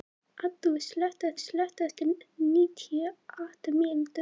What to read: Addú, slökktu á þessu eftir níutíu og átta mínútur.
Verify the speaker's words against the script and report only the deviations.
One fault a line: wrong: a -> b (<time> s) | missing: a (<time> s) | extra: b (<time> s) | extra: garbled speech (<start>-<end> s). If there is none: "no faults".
wrong: þessu -> slökktu (1.4 s)